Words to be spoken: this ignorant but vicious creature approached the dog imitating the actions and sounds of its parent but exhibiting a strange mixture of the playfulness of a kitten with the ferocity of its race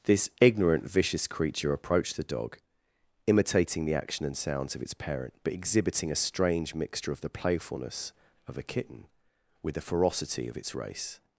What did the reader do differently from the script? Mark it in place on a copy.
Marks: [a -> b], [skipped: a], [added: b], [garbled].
this ignorant [skipped: but] vicious creature approached the dog imitating the [actions -> action] and sounds of its parent but exhibiting a strange mixture of the playfulness of a kitten with the ferocity of its race